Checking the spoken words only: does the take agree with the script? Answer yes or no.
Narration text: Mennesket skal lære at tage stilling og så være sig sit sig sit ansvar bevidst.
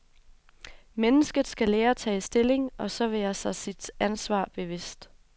no